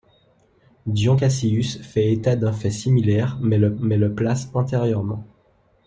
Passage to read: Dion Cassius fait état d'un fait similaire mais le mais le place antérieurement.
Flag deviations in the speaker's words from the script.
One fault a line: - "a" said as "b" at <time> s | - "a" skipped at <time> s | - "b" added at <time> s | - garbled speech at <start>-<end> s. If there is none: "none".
none